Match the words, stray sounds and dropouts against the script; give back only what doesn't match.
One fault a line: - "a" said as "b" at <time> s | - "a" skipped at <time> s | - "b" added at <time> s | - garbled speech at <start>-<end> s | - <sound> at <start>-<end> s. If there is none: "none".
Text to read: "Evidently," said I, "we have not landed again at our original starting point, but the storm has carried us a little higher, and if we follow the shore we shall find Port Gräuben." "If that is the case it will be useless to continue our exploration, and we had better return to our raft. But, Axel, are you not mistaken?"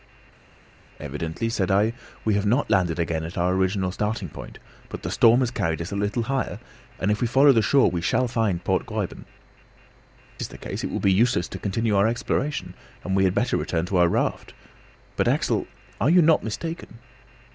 - "If that" skipped at 9.2 s